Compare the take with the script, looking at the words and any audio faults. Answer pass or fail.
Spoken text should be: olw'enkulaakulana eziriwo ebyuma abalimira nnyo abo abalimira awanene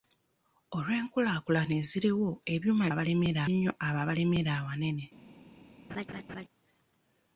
fail